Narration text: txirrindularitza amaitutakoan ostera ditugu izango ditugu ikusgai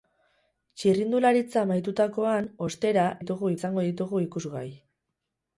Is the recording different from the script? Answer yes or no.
no